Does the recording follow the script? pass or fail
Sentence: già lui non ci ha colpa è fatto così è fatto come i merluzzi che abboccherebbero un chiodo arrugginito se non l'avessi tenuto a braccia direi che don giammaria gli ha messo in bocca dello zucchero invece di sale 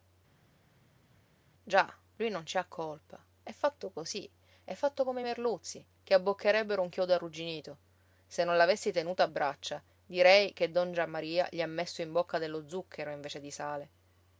pass